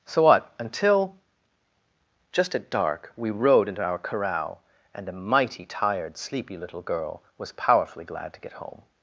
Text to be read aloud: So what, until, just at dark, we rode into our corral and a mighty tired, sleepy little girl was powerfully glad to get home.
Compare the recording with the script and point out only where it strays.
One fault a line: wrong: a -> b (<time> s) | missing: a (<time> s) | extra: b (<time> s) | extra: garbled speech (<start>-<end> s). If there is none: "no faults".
no faults